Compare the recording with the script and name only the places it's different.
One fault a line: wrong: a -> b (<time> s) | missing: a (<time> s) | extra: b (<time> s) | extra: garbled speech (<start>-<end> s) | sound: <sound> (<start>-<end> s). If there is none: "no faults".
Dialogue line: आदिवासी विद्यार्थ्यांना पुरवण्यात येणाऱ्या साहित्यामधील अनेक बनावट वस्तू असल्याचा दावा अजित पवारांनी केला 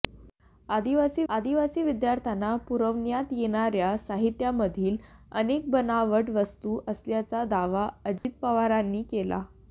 extra: आदिवासी (1.3 s)
sound: dropout (8.2-8.2 s)